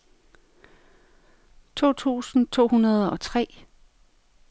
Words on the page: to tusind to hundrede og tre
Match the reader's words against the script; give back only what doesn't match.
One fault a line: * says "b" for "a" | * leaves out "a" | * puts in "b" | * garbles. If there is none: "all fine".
all fine